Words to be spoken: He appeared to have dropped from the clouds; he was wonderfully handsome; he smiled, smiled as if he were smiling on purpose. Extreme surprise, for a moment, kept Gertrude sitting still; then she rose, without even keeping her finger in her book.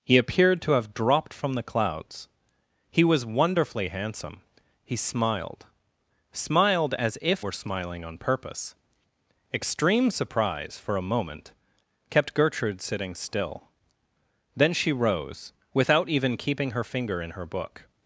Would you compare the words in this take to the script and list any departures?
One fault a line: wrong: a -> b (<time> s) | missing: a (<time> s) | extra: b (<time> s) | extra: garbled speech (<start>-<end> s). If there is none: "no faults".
missing: he (7.5 s)